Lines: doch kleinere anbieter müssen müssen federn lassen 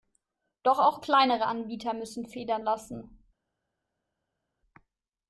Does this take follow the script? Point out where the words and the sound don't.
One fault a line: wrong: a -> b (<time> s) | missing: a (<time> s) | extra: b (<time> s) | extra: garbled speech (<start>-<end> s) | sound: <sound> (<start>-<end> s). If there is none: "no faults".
extra: auch (0.8 s)
missing: müssen (2.2 s)